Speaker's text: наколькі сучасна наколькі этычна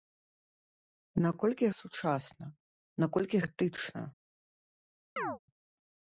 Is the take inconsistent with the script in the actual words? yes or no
no